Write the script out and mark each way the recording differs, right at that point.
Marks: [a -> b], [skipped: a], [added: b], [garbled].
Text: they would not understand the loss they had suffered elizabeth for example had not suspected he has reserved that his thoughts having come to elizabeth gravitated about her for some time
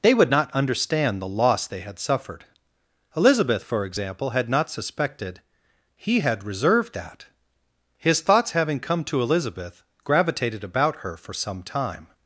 they would not understand the loss they had suffered elizabeth for example had not suspected he [has -> had] reserved that his thoughts having come to elizabeth gravitated about her for some time